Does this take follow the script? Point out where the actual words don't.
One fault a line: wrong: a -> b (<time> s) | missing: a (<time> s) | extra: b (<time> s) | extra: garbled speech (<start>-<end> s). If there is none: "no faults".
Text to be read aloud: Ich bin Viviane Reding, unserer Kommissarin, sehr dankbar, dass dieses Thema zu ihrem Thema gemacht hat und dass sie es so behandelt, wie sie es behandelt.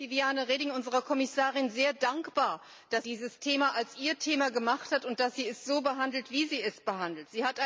no faults